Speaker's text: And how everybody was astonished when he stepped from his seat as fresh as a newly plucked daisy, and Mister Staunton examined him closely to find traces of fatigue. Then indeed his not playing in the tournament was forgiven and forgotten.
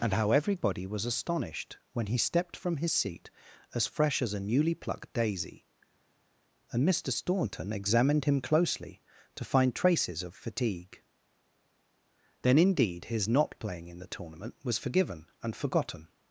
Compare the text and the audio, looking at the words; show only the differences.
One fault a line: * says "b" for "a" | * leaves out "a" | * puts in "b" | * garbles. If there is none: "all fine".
all fine